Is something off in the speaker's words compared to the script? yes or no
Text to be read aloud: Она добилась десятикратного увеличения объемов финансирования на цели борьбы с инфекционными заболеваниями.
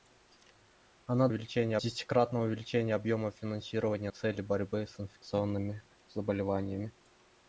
yes